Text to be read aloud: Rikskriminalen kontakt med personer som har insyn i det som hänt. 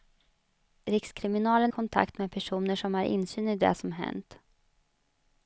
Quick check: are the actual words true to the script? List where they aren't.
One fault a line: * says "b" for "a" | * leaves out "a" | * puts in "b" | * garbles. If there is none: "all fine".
all fine